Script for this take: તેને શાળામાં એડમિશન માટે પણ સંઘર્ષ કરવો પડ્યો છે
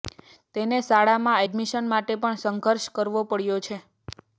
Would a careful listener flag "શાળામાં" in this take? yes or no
no